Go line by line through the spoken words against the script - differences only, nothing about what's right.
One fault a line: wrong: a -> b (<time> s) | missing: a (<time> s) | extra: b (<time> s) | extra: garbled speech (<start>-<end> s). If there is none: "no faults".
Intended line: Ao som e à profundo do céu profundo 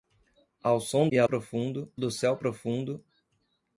no faults